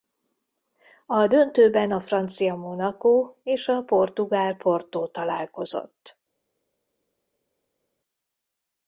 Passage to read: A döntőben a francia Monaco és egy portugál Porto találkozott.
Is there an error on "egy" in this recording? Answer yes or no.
yes